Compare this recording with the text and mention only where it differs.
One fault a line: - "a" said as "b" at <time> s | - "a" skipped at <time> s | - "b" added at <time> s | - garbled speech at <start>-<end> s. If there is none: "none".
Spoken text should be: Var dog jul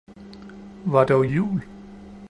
none